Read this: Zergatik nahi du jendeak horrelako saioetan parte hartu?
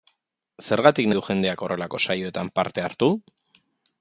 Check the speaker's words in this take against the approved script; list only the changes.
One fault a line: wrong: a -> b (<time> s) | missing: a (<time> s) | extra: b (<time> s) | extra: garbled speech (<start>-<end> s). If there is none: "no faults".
missing: nahi (1.1 s)